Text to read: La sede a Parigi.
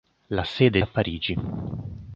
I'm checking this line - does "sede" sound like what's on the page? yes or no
yes